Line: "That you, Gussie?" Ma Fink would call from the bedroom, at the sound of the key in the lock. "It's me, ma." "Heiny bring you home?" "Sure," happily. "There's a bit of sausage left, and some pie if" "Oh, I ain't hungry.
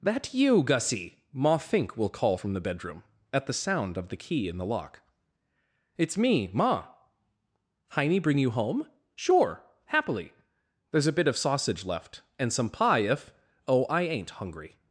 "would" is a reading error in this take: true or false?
true